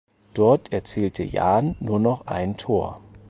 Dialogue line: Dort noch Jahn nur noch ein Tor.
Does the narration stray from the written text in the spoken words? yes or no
yes